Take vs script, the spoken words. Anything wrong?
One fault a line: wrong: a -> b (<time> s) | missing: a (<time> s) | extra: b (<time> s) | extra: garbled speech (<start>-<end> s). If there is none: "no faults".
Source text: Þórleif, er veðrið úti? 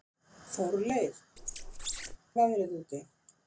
no faults